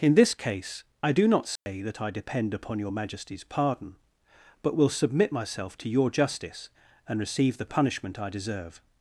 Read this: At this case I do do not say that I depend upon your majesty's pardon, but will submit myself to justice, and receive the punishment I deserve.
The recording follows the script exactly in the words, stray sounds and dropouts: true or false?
false